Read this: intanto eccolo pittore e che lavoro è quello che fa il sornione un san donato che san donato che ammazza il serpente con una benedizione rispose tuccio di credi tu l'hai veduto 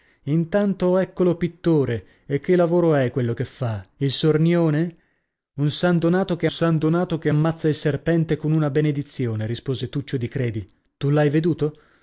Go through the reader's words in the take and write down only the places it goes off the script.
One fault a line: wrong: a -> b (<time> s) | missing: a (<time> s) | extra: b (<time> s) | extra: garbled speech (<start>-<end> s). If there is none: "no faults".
no faults